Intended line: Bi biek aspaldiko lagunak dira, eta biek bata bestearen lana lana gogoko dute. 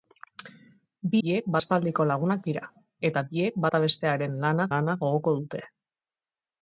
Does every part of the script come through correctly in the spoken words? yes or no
yes